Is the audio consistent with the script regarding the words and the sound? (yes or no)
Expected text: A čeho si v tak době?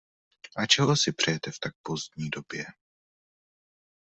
no